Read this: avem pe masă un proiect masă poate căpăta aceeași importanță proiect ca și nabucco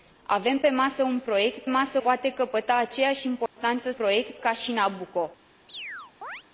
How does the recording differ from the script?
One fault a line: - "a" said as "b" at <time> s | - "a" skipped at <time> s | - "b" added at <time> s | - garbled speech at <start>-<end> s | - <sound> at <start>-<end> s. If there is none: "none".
- dropout at 3.5-3.6 s
- chirp at 5.7-6.4 s